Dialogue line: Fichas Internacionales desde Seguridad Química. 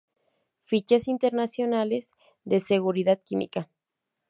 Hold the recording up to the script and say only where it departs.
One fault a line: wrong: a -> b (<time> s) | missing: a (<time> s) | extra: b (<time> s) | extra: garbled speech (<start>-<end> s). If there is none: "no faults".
wrong: desde -> de (2.4 s)